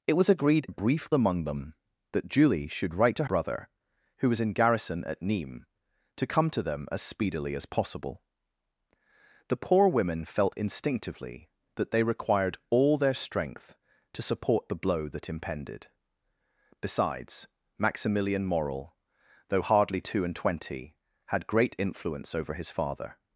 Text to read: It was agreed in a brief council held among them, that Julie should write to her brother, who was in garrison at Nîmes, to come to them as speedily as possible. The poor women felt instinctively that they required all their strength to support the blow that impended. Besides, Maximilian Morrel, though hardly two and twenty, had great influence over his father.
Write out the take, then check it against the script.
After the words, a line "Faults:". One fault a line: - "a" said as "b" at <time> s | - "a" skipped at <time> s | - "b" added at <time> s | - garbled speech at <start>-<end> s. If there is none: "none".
It was agreed a brief among them, that Julie should write to brother, who was in garrison at Nîmes, to come to them as speedily as possible. The poor women felt instinctively that they required all their strength to support the blow that impended. Besides, Maximilian Morrel, though hardly two and twenty, had great influence over his father.
Faults:
- "in" skipped at 0.7 s
- "council held" skipped at 1.1 s
- "her" skipped at 3.2 s